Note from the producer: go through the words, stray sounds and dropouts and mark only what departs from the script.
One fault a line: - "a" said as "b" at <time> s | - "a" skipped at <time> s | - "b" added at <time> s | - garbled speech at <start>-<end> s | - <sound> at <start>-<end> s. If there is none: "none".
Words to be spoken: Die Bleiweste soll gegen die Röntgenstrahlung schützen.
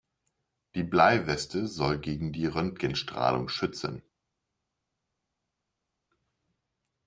none